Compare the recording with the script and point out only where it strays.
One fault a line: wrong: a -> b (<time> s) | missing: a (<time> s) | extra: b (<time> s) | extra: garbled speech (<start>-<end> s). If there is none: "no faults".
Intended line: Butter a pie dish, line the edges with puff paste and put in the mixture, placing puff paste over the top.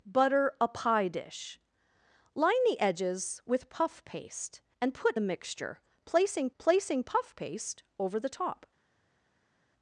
missing: in (5.2 s)
extra: placing (6.6 s)